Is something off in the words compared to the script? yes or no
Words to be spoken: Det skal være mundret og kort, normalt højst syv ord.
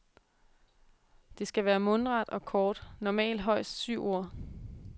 no